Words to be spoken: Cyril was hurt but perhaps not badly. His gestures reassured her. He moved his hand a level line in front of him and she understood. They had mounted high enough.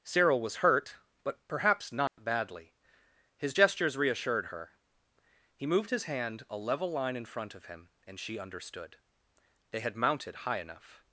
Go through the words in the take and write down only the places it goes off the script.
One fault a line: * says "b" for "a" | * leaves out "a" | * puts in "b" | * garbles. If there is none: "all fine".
all fine